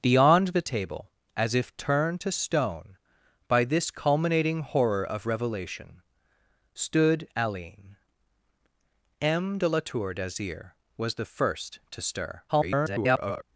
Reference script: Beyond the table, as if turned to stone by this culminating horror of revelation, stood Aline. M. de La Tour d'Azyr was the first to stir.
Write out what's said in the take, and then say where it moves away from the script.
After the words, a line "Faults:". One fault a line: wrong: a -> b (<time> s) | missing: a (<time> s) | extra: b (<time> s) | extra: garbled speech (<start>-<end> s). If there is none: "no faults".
Beyond the table, as if turned to stone by this culminating horror of revelation, stood Aline. M. de La Tour d'Azyr was the first to stir. [garbled]
Faults:
extra: garbled speech (12.5-13.4 s)